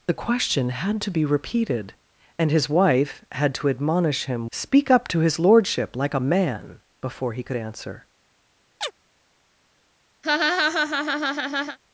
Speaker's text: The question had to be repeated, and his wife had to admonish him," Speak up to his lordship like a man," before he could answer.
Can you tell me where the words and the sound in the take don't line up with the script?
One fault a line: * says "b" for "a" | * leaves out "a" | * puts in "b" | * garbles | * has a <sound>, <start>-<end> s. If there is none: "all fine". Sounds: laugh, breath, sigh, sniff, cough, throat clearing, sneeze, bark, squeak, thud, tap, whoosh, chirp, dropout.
* has a chirp, 8.8-8.9 s
* has a laugh, 10.2-11.8 s